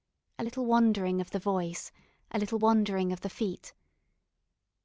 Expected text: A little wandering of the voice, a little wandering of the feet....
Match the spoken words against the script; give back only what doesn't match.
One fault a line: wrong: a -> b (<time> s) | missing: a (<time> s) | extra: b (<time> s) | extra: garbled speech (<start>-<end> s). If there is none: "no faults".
no faults